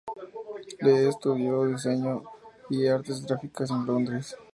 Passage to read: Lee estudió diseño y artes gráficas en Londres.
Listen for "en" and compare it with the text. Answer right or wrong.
right